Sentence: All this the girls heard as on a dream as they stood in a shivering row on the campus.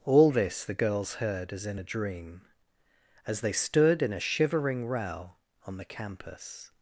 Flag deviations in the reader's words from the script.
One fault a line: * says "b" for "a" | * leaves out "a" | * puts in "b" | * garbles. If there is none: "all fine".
* says "in" for "on"